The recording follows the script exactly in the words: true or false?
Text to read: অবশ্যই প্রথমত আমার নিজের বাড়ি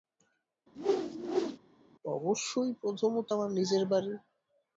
true